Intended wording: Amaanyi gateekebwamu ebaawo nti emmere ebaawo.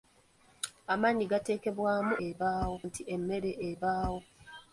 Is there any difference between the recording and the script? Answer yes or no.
no